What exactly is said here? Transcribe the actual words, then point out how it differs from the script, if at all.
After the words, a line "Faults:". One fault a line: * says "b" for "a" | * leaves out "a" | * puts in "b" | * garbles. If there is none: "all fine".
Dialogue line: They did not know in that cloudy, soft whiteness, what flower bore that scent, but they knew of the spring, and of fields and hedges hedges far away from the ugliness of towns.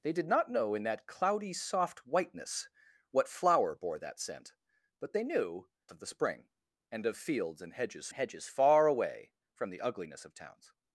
They did not know in that cloudy, soft whiteness, what flower bore that scent, but they knew of the spring, and of fields and hedges hedges far away from the ugliness of towns.
Faults:
all fine